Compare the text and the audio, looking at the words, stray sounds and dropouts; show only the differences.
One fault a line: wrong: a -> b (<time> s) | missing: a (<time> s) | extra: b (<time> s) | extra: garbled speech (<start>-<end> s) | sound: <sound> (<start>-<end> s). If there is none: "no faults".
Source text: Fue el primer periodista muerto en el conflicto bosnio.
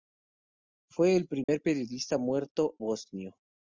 sound: dropout (1.4-1.5 s)
missing: en el conflicto (2.8 s)